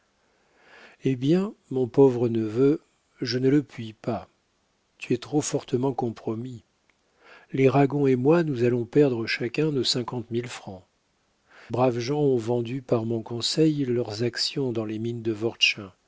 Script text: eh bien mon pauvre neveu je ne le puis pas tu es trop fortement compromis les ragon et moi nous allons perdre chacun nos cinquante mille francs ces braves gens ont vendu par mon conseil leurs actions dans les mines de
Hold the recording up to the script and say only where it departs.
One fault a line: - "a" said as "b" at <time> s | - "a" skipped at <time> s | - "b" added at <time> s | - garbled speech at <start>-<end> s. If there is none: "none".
- "ces" skipped at 10.8 s